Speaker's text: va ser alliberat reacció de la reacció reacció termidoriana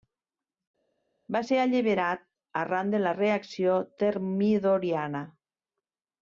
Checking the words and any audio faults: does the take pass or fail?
fail